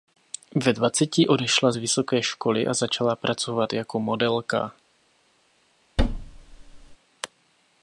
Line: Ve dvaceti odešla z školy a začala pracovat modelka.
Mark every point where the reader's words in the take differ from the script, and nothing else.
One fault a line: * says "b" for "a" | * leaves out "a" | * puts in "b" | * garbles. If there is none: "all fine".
* puts in "vysoké"
* puts in "jako"